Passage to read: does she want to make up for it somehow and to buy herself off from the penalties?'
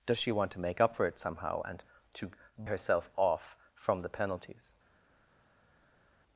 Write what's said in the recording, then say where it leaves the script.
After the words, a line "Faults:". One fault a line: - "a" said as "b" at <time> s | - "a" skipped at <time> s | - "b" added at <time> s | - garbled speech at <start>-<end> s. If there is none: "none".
does she want to make up for it somehow and to herself off from the penalties?'
Faults:
- "buy" skipped at 2.3 s